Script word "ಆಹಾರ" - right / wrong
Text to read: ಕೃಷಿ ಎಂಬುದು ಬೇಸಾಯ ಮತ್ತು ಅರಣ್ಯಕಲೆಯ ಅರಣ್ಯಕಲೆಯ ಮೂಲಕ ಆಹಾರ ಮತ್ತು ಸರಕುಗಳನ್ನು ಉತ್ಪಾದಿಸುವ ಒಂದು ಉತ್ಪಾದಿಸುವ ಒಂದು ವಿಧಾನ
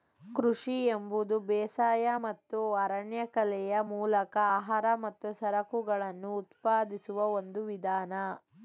right